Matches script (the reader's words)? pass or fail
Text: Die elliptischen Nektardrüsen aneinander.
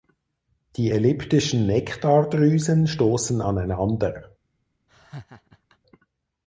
fail